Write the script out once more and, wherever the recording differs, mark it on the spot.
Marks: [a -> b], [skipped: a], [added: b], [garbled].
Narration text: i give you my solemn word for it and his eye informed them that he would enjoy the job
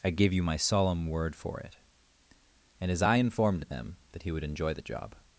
i give you my solemn word for it and his eye informed them that he would enjoy the job